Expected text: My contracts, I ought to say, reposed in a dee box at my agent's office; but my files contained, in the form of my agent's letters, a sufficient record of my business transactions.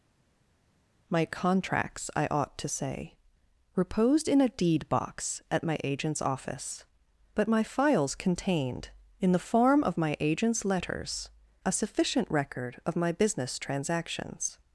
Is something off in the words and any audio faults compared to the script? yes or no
yes